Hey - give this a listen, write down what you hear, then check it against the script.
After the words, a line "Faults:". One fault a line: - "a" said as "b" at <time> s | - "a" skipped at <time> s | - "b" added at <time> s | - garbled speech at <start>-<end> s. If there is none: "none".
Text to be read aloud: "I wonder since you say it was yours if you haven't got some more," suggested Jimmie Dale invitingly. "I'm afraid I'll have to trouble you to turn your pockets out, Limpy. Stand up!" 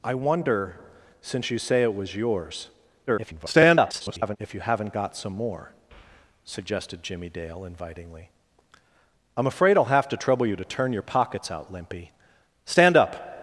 "I wonder since you say it was yours [garbled] if you haven't got some more," suggested Jimmie Dale invitingly. "I'm afraid I'll have to trouble you to turn your pockets out, Limpy. Stand up!"
Faults:
- garbled speech at 3.1-4.4 s